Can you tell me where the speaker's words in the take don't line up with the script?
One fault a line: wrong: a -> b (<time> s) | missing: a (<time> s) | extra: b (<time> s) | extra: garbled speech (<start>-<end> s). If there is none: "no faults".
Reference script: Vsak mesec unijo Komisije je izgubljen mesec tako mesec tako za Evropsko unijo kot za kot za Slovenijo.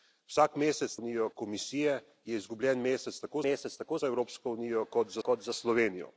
no faults